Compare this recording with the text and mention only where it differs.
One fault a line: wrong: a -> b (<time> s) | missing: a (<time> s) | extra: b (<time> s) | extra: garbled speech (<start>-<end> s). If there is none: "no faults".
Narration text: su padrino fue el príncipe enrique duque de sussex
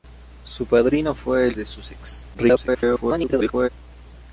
missing: príncipe enrique duque (1.5 s)
extra: garbled speech (2.3-3.7 s)